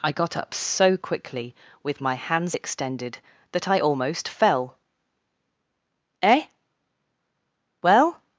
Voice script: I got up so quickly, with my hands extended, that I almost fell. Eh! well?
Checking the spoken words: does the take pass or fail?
pass